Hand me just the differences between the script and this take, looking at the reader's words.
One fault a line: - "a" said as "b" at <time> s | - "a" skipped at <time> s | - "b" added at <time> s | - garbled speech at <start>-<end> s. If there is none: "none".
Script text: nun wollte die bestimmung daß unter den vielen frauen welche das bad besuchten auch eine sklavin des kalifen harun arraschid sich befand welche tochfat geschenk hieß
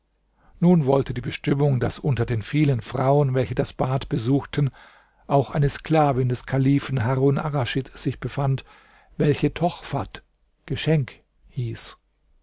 none